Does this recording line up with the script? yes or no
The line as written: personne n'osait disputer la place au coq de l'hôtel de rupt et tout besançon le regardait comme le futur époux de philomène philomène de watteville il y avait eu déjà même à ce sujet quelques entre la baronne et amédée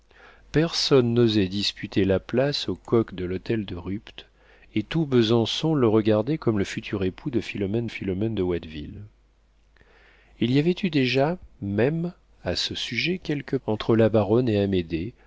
yes